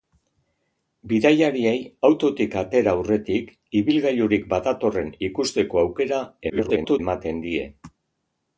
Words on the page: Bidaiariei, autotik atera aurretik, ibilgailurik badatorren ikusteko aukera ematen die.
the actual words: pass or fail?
fail